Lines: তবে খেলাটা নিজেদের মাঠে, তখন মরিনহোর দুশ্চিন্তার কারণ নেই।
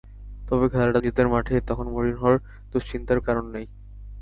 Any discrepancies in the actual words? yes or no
no